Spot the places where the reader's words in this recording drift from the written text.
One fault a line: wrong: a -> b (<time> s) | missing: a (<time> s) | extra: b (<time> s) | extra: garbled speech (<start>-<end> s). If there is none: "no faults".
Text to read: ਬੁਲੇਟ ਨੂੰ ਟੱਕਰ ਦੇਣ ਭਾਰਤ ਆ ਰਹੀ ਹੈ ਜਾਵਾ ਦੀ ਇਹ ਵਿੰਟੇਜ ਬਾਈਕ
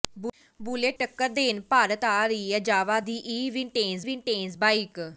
missing: ਨੂੰ (1.0 s)
extra: ਵਿੰਟੇਜ (4.0 s)